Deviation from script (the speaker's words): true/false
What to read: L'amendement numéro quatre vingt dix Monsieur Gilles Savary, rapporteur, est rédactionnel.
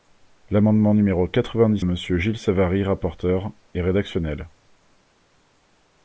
false